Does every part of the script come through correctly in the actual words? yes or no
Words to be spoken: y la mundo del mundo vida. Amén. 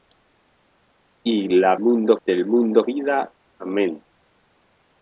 yes